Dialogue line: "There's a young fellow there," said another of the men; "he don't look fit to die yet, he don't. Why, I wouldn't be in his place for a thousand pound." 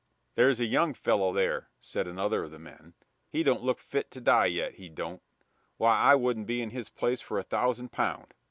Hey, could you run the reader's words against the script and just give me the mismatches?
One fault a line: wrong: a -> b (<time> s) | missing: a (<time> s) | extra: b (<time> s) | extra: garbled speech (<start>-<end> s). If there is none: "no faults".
no faults